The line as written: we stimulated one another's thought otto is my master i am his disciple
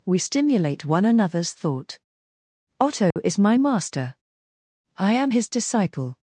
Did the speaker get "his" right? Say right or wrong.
right